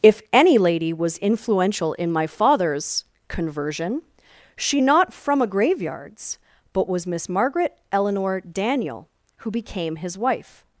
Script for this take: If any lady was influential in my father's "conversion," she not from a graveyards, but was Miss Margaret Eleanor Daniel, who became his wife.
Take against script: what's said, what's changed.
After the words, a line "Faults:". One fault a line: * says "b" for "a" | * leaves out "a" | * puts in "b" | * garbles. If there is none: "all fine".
If any lady was influential in my father's "conversion," she not from a graveyards, but was Miss Margaret Eleanor Daniel, who became his wife.
Faults:
all fine